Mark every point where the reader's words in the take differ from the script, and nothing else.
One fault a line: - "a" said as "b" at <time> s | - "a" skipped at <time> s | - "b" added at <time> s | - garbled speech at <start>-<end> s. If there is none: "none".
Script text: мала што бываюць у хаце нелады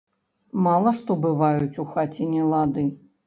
none